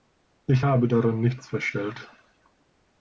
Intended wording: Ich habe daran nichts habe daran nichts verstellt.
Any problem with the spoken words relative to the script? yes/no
yes